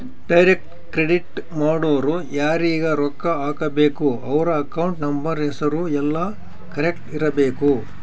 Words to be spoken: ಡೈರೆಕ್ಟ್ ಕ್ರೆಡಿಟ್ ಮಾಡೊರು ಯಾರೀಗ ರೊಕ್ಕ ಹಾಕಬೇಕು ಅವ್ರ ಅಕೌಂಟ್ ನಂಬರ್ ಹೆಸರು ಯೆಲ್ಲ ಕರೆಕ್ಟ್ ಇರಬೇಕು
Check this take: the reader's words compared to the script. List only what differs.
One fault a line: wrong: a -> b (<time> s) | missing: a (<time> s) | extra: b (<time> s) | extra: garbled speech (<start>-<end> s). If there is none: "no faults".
no faults